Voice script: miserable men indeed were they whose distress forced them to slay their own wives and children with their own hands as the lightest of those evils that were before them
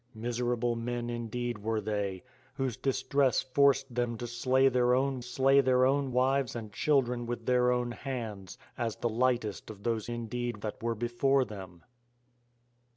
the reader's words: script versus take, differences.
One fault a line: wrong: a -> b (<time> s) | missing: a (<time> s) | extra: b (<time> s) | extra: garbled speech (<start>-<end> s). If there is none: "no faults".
extra: slay their own (5.2 s)
wrong: evils -> indeed (10.1 s)